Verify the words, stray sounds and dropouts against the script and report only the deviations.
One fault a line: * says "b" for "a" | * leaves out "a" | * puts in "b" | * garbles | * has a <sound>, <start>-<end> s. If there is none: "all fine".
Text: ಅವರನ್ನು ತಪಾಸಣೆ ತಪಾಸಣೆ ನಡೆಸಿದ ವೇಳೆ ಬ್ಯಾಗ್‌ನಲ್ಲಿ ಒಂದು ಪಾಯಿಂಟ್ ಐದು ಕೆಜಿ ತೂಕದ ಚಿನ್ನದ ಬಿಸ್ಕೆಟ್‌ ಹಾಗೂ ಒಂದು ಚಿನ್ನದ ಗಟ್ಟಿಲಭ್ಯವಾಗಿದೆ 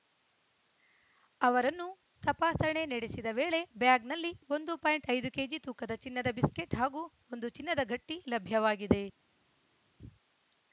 * leaves out "ತಪಾಸಣೆ"